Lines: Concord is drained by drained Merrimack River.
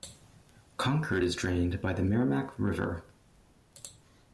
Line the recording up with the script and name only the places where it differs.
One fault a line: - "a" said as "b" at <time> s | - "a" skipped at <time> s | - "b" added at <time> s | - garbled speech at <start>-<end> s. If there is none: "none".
- "drained" said as "the" at 1.9 s